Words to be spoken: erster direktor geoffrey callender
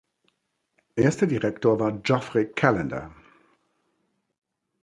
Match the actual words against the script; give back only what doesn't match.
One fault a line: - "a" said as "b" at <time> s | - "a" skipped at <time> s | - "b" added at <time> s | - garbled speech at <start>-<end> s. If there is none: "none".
- "war" added at 1.8 s